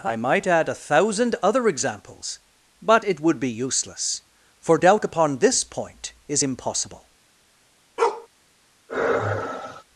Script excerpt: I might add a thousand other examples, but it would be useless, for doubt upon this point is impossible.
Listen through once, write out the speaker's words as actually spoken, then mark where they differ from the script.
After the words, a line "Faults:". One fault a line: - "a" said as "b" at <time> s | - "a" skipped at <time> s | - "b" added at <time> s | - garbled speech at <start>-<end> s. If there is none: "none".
I might add a thousand other examples, but it would be useless, for doubt upon this point is impossible.
Faults:
none